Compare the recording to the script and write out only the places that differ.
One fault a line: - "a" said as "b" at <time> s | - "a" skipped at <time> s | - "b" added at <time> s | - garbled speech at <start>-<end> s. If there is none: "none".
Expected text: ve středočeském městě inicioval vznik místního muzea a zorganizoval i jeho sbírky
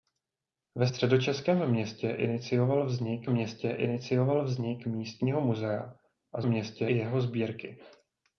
- "městě inicioval vznik" added at 3.3 s
- "zorganizoval" said as "městě" at 6.4 s